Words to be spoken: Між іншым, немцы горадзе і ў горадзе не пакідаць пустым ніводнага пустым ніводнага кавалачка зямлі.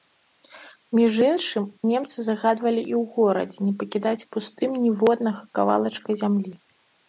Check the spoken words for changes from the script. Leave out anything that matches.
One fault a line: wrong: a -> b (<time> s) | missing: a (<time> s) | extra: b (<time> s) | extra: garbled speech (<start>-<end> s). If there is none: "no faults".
wrong: горадзе -> загадвалі (2.3 s)
missing: пустым ніводнага (5.4 s)